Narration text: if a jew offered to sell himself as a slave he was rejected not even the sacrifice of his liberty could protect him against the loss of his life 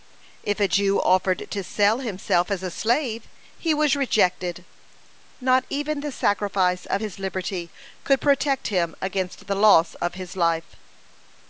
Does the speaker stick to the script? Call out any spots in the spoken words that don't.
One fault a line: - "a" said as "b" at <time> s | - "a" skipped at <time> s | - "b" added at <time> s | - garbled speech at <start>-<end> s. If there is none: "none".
none